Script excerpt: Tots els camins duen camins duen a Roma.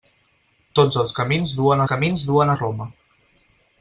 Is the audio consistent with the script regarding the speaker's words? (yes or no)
yes